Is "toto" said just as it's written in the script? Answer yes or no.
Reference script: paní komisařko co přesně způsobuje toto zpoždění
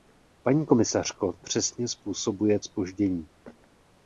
no